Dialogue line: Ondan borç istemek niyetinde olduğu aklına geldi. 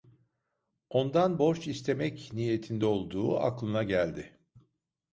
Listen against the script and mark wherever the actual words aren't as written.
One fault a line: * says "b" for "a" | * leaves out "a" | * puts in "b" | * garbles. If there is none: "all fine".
all fine